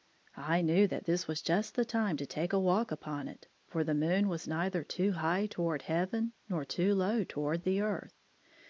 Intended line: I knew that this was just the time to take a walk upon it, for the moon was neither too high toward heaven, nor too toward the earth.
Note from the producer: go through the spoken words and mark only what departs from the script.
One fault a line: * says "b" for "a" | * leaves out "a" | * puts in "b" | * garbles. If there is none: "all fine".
* puts in "low"